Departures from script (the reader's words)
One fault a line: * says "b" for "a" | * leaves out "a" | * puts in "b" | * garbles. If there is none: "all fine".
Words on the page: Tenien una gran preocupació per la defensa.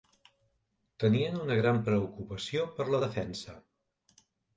all fine